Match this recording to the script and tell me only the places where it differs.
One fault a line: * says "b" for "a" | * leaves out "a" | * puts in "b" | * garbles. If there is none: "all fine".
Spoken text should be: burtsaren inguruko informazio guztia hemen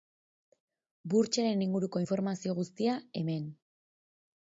all fine